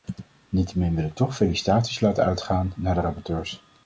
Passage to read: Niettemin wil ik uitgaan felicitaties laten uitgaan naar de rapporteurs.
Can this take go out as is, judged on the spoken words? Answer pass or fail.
fail